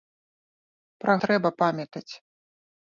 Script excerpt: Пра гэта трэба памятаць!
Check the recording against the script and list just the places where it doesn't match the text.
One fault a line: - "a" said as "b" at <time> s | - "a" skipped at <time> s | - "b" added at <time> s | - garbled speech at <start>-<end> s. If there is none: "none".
- "гэта" skipped at 1.1 s